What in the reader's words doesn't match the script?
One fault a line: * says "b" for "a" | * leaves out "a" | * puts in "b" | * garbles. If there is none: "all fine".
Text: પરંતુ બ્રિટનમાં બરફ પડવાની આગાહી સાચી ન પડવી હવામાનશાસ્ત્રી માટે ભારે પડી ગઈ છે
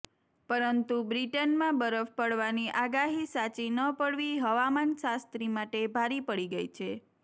all fine